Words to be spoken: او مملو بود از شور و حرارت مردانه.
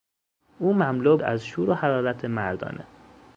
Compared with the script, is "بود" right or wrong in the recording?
wrong